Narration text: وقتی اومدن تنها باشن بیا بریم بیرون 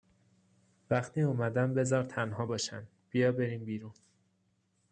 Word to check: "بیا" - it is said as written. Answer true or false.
true